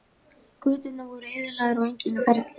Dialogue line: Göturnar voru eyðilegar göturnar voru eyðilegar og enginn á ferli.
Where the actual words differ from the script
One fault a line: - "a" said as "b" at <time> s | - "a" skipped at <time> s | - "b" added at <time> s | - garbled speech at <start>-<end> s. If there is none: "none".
- "göturnar voru eyðilegar" skipped at 1.8 s